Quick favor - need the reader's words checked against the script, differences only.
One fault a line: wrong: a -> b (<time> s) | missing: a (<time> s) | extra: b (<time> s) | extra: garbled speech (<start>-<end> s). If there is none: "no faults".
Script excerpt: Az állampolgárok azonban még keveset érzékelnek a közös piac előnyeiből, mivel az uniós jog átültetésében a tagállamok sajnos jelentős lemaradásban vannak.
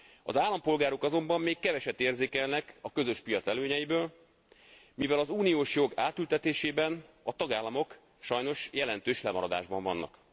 no faults